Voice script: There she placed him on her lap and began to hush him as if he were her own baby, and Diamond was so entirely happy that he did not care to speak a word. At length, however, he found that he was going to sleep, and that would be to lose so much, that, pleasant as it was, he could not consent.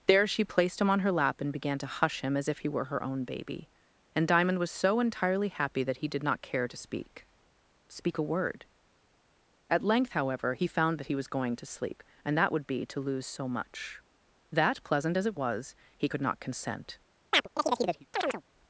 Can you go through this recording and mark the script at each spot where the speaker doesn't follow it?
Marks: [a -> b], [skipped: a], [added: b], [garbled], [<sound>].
There she placed him on her lap and began to hush him as if he were her own baby, and Diamond was so entirely happy that he did not care to speak [added: speak] a word. At length, however, he found that he was going to sleep, and that would be to lose so much, that, pleasant as it was, he could not consent. [chirp]